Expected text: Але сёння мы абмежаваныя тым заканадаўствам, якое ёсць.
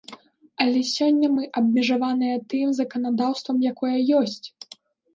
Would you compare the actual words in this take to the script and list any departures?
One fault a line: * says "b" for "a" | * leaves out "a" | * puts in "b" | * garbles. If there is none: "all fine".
all fine